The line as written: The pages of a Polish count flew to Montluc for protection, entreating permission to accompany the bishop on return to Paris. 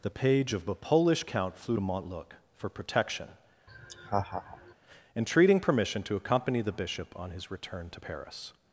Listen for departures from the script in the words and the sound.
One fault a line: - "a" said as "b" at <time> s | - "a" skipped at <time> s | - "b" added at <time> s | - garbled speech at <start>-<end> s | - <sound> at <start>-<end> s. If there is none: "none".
- "pages" said as "page" at 0.1 s
- laugh at 3.7-4.7 s
- "his" added at 7.3 s